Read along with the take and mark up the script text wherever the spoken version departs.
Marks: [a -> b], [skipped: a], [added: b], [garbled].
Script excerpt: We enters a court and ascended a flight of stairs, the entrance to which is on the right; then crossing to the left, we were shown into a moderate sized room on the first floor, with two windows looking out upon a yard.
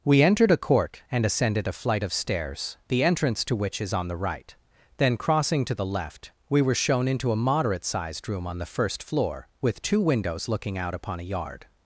We [enters -> entered] a court and ascended a flight of stairs, the entrance to which is on the right; then crossing to the left, we were shown into a moderate sized room on the first floor, with two windows looking out upon a yard.